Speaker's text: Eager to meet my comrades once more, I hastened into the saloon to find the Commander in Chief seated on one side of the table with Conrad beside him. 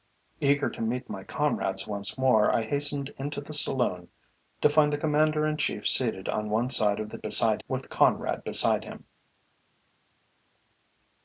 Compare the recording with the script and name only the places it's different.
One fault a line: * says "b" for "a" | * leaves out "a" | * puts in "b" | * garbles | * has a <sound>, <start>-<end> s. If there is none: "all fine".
* says "beside" for "table"